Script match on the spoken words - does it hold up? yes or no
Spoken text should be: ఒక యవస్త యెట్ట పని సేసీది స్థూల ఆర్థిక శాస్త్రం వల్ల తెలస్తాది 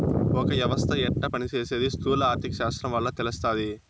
yes